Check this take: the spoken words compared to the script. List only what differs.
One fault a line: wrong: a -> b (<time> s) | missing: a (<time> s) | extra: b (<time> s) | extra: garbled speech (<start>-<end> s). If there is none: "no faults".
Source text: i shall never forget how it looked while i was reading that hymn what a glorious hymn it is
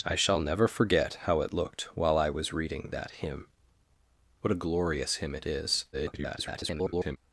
extra: garbled speech (5.9-7.2 s)